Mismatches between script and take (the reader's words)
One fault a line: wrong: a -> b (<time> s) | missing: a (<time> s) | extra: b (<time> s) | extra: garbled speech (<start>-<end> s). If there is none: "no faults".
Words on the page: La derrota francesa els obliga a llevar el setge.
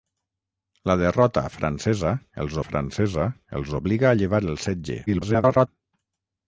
extra: francesa els (2.7 s)
extra: garbled speech (5.1-5.7 s)